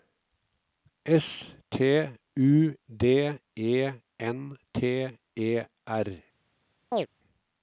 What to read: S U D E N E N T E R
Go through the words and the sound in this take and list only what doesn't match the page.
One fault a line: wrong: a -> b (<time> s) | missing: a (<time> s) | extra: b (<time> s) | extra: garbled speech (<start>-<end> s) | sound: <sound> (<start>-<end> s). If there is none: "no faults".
extra: T (1.7 s)
missing: E N (4.6 s)
sound: chirp (6.9-7.1 s)